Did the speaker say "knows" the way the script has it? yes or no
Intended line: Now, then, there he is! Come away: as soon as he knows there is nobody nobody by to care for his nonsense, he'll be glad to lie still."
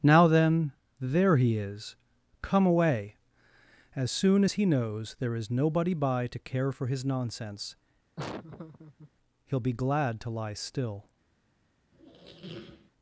yes